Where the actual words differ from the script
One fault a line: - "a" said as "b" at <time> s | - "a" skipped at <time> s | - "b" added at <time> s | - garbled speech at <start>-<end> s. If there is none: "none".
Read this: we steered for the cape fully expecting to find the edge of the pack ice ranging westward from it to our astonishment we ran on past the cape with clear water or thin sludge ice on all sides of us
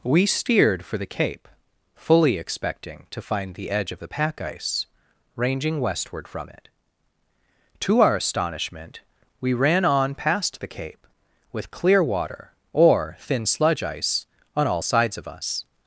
none